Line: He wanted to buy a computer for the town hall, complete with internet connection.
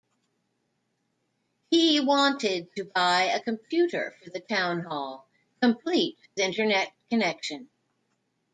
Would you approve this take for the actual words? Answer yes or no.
no